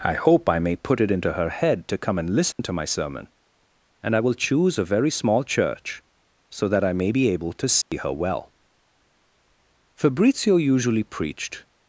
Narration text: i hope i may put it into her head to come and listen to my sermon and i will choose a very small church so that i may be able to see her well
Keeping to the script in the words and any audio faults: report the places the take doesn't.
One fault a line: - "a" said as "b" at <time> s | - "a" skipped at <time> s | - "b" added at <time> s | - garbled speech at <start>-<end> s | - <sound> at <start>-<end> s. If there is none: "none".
- dropout at 2.5-2.6 s
- dropout at 7.8-7.9 s
- "fabrizio usually preached" added at 9.9 s